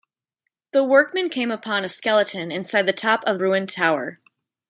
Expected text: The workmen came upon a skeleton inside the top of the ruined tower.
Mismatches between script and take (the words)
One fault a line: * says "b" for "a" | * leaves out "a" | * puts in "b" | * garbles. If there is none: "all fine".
* leaves out "the"